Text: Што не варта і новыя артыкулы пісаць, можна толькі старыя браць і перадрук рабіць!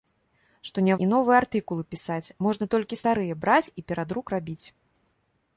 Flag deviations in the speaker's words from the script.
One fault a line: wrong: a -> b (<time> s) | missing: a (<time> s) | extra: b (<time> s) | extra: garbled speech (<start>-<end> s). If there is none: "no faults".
missing: варта (0.9 s)